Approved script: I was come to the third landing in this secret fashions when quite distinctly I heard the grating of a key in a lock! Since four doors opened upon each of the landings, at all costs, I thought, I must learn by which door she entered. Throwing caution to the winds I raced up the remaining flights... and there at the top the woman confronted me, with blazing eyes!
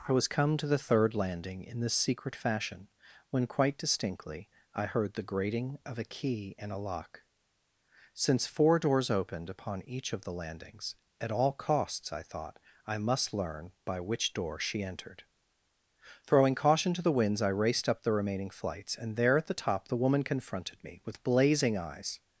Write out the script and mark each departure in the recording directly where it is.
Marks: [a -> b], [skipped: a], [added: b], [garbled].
I was come to the third landing in this secret [fashions -> fashion] when quite distinctly I heard the grating of a key in a lock! Since four doors opened upon each of the landings, at all costs, I thought, I must learn by which door she entered. Throwing caution to the winds I raced up the remaining flights... and there at the top the woman confronted me, with blazing eyes!